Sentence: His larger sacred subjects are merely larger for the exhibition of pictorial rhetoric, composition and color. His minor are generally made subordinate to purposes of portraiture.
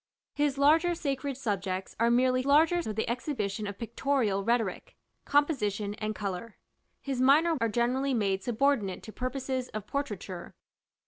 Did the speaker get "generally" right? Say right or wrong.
right